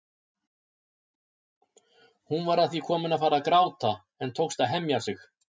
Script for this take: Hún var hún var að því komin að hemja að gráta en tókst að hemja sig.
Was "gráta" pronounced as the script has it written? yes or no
yes